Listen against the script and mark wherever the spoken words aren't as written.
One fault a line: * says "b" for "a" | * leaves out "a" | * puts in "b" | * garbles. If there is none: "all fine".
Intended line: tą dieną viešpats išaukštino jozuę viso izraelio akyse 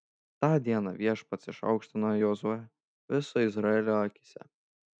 all fine